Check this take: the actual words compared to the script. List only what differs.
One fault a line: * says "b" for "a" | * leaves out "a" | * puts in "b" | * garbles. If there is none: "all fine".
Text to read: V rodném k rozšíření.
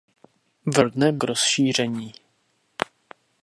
all fine